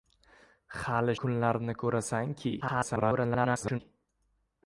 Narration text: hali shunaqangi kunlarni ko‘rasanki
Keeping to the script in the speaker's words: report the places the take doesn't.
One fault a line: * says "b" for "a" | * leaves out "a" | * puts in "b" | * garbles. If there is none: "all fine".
* leaves out "shunaqangi"
* garbles